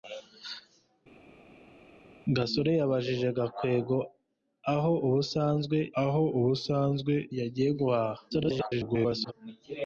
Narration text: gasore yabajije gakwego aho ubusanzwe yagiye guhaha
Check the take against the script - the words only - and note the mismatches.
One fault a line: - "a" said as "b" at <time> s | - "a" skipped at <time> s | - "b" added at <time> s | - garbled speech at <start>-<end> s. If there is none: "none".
- "aho ubusanzwe" added at 6.0 s
- garbled speech at 8.3-9.3 s